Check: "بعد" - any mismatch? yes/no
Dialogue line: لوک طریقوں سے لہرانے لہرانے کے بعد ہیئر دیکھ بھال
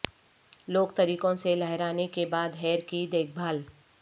no